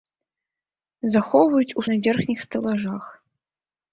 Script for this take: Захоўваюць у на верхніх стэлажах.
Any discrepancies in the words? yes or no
no